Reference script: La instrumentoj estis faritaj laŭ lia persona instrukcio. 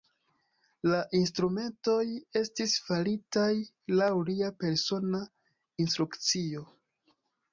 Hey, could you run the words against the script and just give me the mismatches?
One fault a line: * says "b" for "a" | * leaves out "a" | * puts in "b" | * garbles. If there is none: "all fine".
all fine